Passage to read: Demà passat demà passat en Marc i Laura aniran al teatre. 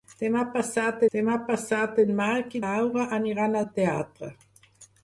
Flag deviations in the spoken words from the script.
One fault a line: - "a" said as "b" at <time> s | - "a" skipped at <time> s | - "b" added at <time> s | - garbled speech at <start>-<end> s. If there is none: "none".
none